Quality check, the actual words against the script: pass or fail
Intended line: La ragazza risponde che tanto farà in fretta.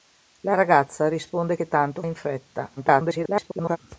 fail